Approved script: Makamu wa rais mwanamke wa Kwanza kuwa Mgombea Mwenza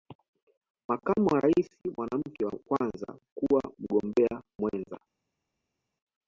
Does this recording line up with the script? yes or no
yes